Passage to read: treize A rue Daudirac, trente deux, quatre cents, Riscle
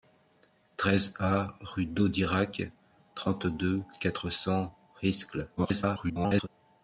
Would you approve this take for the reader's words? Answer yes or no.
no